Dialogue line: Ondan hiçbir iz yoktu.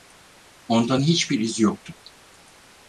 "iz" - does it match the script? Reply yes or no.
yes